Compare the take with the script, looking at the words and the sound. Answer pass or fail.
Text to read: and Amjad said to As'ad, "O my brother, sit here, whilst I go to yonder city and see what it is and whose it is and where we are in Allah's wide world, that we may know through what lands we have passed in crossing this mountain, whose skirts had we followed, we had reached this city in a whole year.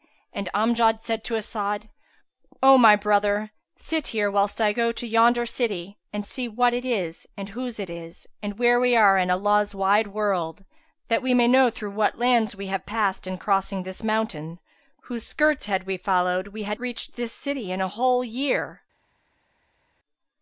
pass